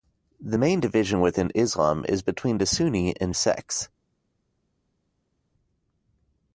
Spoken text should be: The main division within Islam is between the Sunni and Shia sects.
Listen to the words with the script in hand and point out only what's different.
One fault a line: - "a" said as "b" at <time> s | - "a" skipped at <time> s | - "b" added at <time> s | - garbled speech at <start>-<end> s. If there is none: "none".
- "Shia" skipped at 3.3 s